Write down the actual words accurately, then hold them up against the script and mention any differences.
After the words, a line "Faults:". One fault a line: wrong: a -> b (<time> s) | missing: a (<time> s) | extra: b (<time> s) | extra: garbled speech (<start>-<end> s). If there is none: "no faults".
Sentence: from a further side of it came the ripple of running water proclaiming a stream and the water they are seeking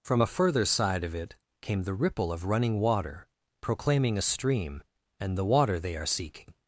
from a further side of it came the ripple of running water proclaiming a stream and the water they are seeking
Faults:
no faults